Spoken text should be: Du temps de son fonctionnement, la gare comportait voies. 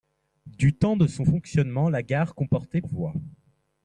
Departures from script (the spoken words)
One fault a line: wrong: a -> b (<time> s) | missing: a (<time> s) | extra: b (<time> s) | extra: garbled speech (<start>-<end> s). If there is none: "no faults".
no faults